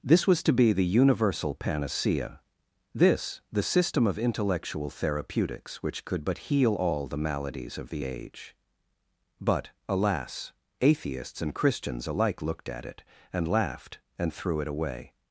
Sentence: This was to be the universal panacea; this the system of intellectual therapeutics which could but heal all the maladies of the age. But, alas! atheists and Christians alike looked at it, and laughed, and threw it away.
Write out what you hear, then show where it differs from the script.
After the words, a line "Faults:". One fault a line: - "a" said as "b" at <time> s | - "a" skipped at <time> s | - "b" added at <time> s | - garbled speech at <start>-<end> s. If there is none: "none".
This was to be the universal panacea; this the system of intellectual therapeutics which could but heal all the maladies of the age. But, alas! atheists and Christians alike looked at it, and laughed, and threw it away.
Faults:
none